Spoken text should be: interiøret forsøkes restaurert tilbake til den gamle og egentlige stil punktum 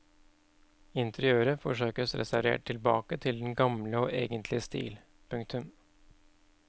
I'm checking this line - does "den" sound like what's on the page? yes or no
yes